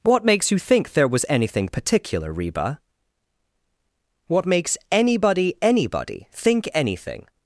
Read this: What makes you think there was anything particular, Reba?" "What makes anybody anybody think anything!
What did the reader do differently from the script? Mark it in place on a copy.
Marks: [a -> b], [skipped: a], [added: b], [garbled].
What makes you think there was anything particular, Reba?" "What makes anybody anybody think anything!